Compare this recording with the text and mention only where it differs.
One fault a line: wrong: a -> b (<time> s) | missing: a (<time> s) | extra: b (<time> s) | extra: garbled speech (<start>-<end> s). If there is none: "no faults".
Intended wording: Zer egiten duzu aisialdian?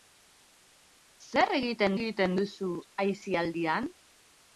extra: egiten (2.0 s)